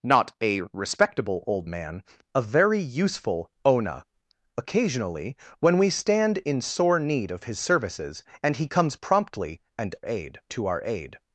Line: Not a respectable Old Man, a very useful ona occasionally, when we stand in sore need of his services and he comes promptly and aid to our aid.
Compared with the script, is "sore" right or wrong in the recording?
right